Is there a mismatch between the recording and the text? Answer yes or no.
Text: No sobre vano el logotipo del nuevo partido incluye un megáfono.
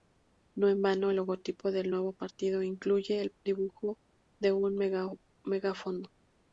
yes